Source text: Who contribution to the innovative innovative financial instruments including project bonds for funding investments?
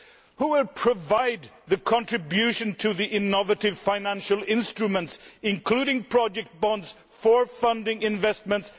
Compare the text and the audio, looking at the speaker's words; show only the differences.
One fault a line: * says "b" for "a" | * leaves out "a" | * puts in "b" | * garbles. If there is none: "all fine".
* puts in "will provide the"
* leaves out "innovative"